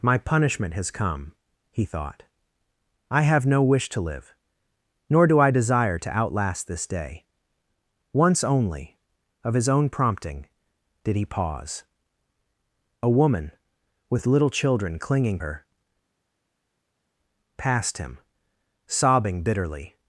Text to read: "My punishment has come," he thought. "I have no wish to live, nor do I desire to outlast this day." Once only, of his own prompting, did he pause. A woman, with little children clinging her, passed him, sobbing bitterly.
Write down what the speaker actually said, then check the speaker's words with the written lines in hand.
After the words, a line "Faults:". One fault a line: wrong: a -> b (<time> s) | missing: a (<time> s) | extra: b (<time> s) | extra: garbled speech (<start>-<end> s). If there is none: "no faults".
"My punishment has come," he thought. "I have no wish to live, nor do I desire to outlast this day." Once only, of his own prompting, did he pause. A woman, with little children clinging her, passed him, sobbing bitterly.
Faults:
no faults